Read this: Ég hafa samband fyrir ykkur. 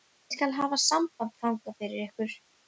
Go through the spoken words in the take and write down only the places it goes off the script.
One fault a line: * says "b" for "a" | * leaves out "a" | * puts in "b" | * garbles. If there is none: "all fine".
* puts in "skal"
* puts in "þangað"